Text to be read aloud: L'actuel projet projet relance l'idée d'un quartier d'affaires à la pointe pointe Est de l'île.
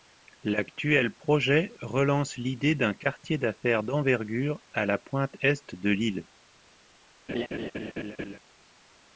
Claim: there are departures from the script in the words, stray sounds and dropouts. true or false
true